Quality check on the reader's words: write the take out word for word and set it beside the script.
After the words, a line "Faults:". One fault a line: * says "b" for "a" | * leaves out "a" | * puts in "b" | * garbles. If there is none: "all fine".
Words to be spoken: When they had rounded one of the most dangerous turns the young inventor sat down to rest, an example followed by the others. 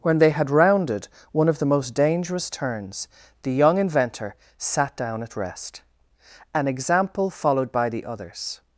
When they had rounded one of the most dangerous turns the young inventor sat down at rest, an example followed by the others.
Faults:
* says "at" for "to"